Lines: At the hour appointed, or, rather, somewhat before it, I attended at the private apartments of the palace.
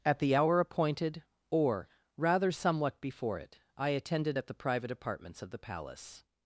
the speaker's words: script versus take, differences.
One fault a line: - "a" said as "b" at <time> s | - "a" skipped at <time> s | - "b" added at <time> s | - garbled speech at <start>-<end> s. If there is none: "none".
none